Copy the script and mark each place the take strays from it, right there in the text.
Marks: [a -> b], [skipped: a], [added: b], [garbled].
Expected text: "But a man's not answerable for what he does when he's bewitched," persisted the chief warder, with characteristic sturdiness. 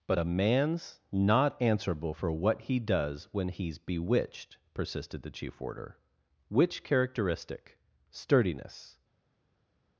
"But a man's not answerable for what he does when he's bewitched," persisted the chief warder, [with -> which] characteristic sturdiness.